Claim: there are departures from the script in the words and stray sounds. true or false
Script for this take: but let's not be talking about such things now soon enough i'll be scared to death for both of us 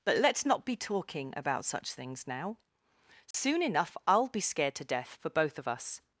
true